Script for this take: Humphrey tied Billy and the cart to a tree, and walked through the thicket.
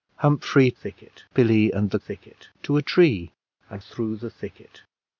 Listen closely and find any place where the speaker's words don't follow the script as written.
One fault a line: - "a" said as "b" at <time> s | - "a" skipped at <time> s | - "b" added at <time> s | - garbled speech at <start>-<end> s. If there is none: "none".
- "tied" said as "thicket" at 0.7 s
- "cart" said as "thicket" at 2.0 s
- "walked" skipped at 3.8 s